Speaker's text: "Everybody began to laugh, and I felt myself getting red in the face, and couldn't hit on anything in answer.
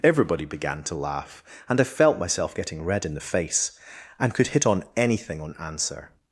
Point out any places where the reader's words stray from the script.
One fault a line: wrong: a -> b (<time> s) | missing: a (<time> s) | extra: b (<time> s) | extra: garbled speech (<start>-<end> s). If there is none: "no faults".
wrong: couldn't -> could (4.3 s)
wrong: in -> on (5.4 s)